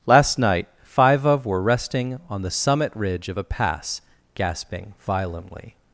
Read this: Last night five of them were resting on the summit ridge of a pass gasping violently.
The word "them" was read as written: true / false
false